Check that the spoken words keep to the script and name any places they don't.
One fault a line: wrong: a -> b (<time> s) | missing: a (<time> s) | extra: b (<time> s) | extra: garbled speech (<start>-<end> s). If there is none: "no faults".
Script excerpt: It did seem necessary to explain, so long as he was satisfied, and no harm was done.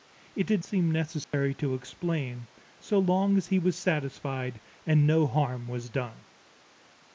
no faults